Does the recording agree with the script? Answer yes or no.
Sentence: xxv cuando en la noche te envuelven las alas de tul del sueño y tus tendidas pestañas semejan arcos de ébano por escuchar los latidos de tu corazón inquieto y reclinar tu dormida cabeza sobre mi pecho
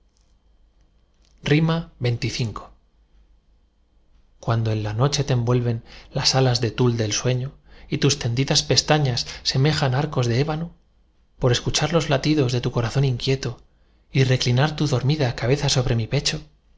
yes